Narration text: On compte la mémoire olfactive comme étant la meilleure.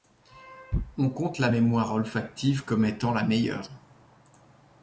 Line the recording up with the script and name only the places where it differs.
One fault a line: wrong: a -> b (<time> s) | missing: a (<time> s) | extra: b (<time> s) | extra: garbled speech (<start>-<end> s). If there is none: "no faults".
no faults